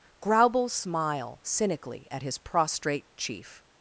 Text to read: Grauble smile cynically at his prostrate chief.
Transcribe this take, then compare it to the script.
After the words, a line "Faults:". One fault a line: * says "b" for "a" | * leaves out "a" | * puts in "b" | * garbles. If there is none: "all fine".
Grauble smile cynically at his prostrate chief.
Faults:
all fine